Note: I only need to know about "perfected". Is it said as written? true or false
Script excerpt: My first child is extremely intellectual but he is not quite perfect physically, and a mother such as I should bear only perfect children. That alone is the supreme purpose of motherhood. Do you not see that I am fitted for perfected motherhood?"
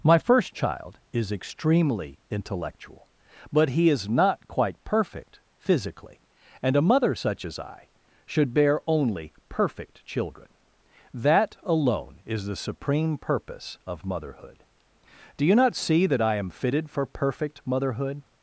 false